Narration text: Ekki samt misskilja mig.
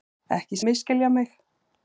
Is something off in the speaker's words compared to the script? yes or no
yes